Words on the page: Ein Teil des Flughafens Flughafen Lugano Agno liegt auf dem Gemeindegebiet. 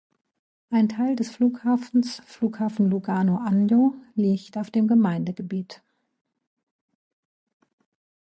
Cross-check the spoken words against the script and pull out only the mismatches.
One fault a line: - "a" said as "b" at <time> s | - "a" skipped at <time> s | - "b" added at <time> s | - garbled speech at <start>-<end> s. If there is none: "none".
none